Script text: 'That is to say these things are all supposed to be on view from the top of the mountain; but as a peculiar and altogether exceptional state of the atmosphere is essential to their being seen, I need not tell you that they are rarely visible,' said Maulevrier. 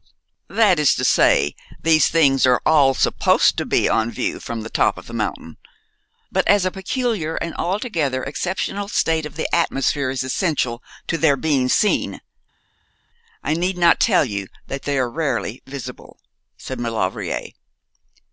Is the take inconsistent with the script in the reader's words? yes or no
no